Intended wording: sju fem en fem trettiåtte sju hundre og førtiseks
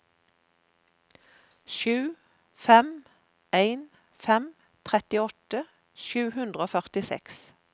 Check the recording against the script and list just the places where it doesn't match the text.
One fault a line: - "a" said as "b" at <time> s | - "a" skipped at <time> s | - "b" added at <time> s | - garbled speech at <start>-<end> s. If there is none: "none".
none